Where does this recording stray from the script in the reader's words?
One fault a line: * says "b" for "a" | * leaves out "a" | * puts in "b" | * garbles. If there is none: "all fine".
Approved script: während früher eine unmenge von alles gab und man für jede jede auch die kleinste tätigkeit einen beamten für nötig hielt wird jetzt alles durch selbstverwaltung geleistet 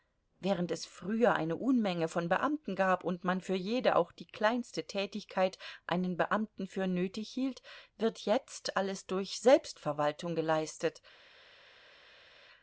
* puts in "es"
* says "beamten" for "alles"
* leaves out "jede"